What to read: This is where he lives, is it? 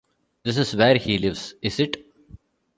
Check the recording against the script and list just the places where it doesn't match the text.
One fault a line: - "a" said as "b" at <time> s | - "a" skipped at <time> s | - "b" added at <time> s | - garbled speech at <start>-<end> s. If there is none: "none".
none